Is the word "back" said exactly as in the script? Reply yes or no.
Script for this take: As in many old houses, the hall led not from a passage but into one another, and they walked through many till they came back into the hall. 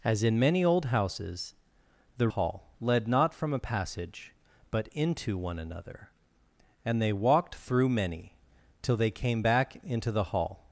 yes